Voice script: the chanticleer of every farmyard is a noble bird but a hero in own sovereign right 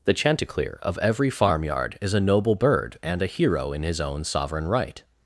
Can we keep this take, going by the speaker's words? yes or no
no